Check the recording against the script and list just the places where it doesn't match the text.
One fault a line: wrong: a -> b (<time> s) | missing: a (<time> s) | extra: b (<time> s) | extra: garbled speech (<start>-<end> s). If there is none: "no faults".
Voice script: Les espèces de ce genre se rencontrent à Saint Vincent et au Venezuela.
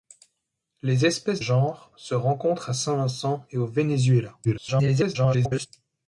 missing: de ce (1.4 s)
extra: garbled speech (4.4-5.7 s)